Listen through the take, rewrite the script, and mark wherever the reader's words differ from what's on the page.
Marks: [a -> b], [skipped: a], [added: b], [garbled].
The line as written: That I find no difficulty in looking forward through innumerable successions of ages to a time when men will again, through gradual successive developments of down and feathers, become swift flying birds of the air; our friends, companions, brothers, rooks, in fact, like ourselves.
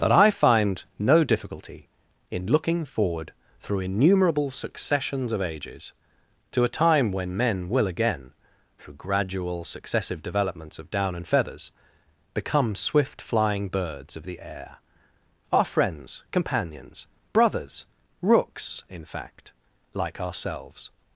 That I find no difficulty in looking forward through innumerable successions of ages to a time when men will again, through gradual successive developments of down and feathers, become swift flying birds of the air; our friends, companions, brothers, rooks, in fact, like ourselves.